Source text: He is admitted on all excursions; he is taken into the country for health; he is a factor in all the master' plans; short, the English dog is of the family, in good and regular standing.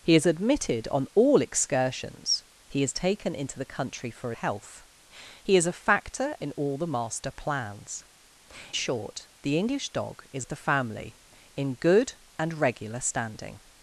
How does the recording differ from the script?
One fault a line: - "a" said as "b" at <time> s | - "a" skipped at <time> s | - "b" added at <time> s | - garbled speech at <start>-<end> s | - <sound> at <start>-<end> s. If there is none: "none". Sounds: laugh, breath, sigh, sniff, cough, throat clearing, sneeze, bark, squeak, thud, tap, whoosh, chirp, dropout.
none